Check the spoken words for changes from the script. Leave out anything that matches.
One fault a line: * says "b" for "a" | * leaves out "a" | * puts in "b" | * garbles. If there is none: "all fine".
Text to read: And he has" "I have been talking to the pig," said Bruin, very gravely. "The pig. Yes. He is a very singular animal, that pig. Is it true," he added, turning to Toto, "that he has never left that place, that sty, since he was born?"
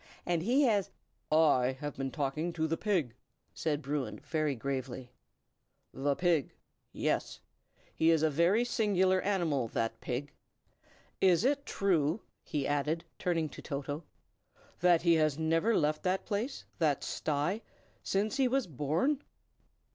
all fine